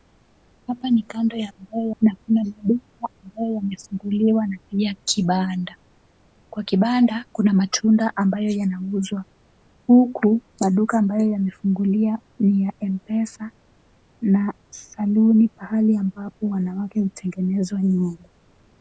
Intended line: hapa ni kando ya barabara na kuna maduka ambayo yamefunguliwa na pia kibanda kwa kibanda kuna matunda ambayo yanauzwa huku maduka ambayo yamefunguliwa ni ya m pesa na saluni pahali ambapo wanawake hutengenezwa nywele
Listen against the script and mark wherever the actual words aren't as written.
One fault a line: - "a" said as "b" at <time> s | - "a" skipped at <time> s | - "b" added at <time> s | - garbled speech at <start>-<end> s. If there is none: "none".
- "barabara" said as "ambayo" at 1.6 s